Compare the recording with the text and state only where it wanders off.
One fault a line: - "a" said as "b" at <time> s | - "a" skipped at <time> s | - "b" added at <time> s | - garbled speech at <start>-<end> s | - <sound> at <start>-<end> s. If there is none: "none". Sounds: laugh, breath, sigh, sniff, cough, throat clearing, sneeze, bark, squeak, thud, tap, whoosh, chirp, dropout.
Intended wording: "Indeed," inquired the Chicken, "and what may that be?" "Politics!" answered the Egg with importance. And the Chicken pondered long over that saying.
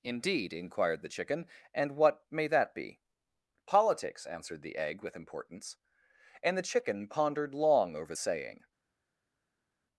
- "that" skipped at 8.2 s